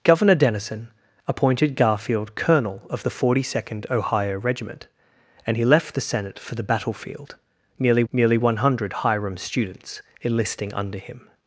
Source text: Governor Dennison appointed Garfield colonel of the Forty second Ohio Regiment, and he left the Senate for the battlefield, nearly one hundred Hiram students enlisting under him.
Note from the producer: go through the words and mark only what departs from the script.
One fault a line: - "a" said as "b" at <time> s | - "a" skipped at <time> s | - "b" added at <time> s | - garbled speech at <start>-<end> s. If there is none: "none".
- "nearly" added at 8.1 s